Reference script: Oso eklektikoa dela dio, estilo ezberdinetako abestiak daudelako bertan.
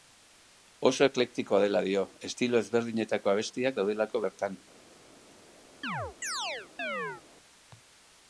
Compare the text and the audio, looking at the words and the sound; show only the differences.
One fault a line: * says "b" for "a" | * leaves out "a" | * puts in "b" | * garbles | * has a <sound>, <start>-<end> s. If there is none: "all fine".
* has a chirp, 5.8-7.2 s